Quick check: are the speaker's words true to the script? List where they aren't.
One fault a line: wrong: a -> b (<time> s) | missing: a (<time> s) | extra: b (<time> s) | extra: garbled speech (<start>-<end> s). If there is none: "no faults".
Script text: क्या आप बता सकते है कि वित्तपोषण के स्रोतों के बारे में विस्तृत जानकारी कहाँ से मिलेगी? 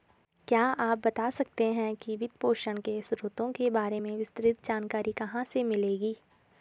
no faults